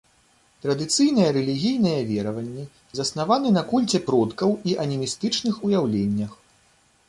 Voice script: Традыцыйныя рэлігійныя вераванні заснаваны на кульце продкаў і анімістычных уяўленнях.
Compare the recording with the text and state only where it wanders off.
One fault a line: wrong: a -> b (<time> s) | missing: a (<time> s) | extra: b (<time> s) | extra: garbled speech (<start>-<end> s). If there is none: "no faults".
no faults